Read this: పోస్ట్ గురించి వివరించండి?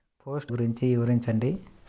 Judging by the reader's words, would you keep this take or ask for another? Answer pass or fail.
pass